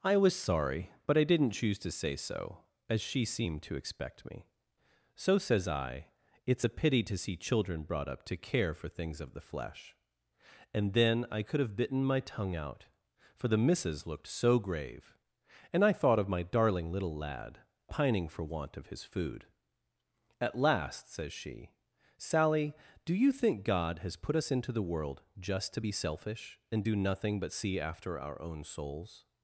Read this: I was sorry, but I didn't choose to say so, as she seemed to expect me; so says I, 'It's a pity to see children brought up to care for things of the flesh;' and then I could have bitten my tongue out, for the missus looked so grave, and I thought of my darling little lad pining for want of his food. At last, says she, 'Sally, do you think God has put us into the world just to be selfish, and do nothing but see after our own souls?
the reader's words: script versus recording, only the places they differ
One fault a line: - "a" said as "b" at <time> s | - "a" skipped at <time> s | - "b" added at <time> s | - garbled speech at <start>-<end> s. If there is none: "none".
none